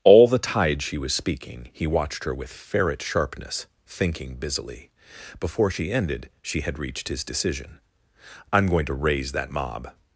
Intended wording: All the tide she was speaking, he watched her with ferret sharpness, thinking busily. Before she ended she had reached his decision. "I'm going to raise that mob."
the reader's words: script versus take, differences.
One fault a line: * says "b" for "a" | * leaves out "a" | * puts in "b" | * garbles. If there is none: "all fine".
all fine